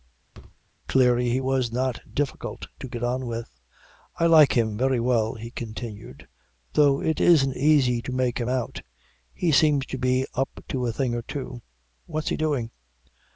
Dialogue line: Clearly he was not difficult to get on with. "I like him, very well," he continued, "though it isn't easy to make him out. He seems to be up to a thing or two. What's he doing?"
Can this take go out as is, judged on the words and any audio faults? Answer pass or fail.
fail